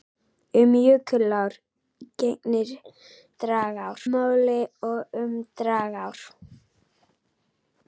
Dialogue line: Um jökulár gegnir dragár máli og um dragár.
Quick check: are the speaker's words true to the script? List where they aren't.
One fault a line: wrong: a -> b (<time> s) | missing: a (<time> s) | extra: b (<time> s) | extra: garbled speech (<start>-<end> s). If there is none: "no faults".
no faults